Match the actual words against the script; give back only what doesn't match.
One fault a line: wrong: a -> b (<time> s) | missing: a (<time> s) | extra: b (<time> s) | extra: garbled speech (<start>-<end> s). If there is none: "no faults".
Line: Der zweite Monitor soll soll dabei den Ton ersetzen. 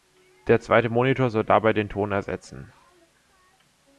missing: soll (1.4 s)